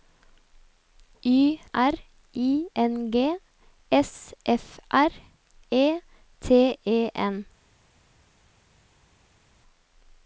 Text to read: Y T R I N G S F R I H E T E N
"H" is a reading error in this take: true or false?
true